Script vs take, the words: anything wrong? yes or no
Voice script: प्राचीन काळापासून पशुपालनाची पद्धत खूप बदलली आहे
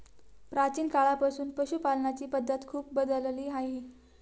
no